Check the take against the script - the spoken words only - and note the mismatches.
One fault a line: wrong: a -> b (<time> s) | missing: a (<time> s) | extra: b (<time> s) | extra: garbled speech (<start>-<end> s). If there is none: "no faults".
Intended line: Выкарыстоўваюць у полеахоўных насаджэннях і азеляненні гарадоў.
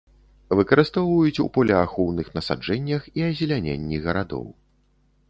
no faults